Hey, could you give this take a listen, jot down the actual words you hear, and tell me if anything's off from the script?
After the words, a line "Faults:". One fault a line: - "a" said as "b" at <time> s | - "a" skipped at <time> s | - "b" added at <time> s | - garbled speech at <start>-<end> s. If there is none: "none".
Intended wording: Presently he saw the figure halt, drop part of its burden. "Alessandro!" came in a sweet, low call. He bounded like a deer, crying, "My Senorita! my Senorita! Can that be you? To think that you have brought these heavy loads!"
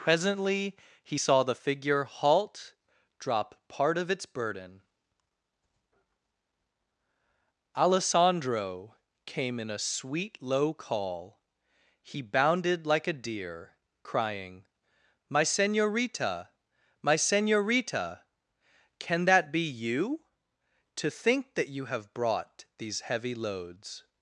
Presently he saw the figure halt, drop part of its burden. "Alessandro!" came in a sweet, low call. He bounded like a deer, crying, "My Senorita! my Senorita! Can that be you? To think that you have brought these heavy loads!"
Faults:
none